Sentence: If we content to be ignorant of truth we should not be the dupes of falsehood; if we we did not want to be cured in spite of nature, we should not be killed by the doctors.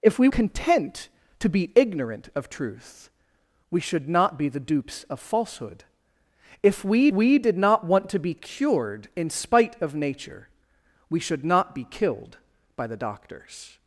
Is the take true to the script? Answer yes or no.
yes